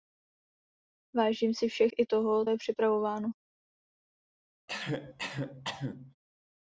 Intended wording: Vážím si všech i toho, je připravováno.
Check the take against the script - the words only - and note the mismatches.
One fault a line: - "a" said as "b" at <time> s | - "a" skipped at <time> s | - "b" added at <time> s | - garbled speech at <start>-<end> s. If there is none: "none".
none